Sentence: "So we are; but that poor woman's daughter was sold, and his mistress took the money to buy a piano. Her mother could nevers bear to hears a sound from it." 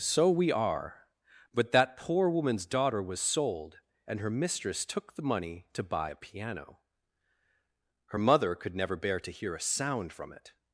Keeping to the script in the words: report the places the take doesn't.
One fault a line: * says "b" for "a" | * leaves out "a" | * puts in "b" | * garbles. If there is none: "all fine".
* says "her" for "his"
* says "never" for "nevers"
* says "hear" for "hears"